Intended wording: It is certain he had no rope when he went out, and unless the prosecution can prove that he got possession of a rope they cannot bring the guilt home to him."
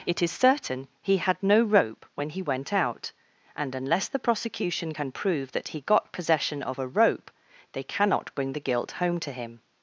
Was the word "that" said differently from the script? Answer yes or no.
no